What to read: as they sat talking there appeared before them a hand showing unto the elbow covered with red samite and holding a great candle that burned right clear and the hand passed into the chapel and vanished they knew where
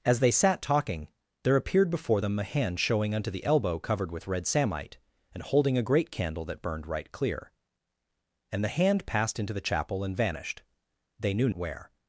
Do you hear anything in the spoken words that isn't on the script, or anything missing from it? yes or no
no